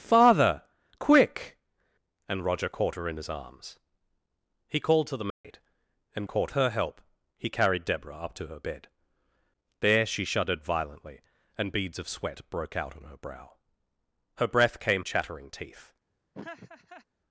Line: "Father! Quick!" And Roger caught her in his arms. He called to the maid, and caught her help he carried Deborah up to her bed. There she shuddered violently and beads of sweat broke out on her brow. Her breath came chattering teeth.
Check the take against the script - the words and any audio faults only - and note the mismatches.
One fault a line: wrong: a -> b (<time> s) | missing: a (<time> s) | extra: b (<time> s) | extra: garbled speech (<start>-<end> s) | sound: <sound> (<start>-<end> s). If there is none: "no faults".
sound: dropout (5.3-5.4 s)
sound: laugh (16.3-17.1 s)